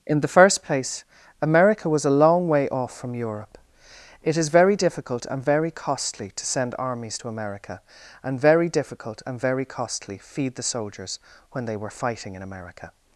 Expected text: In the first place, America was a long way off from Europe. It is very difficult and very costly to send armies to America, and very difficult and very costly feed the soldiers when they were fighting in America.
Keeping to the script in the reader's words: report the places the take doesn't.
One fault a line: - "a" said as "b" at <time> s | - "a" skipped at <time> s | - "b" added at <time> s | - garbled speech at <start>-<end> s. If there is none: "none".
none